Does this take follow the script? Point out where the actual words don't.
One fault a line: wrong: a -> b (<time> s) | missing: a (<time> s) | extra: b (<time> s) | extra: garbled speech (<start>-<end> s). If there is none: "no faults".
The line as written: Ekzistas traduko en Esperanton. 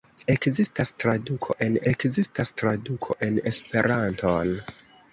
extra: ekzistas traduko en (1.9 s)